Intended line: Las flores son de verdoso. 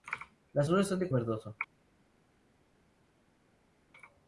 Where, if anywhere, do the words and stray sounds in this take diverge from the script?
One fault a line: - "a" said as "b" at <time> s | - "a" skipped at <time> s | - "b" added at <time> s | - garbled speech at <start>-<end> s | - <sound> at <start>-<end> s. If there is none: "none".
none